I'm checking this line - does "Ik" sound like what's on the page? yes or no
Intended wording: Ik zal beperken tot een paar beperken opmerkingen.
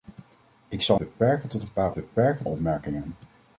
yes